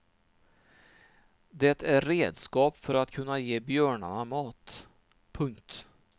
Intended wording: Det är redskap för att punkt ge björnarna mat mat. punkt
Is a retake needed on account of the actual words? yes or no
yes